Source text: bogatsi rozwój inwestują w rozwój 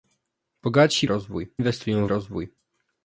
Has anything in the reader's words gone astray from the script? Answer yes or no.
no